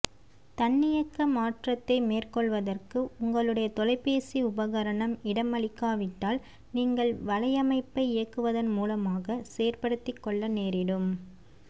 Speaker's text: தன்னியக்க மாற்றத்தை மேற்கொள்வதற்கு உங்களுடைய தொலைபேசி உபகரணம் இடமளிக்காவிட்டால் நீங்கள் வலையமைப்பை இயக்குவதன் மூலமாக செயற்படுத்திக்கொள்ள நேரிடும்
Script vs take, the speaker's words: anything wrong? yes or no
no